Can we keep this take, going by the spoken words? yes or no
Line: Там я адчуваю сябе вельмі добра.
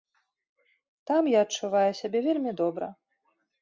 yes